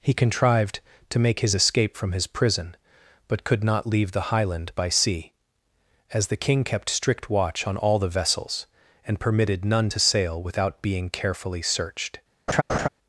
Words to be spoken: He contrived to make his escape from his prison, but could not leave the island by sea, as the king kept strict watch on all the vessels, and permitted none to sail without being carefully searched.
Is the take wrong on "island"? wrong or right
wrong